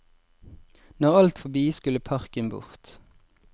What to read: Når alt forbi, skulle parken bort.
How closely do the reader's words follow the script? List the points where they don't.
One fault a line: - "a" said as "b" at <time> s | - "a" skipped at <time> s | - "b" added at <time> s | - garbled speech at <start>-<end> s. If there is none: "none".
none